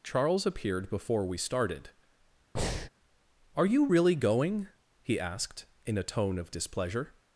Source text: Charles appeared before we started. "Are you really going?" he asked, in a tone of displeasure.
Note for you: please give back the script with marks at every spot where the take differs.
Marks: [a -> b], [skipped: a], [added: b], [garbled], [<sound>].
Charles appeared before we started. [breath] "Are you really going?" he asked, in a tone of displeasure.